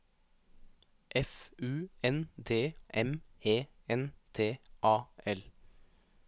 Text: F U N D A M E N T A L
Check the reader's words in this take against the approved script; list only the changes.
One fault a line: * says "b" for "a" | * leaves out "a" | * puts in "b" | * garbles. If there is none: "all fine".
* leaves out "A"